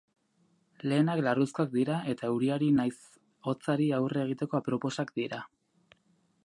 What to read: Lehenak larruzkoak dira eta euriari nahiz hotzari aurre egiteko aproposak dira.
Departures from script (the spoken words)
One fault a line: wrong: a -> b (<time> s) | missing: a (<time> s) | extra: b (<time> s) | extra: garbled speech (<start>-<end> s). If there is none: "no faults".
no faults